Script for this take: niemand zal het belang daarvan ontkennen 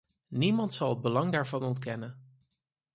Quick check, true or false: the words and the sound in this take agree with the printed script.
true